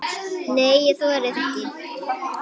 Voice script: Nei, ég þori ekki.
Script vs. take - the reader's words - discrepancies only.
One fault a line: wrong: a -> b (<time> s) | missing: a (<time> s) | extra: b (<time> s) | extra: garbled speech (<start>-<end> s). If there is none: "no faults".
no faults